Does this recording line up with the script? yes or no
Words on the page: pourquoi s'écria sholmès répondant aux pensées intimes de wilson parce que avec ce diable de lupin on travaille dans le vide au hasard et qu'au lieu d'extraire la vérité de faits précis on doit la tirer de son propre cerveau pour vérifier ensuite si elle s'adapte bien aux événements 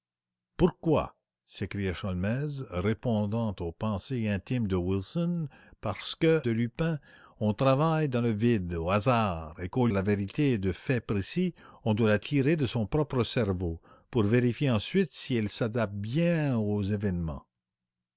no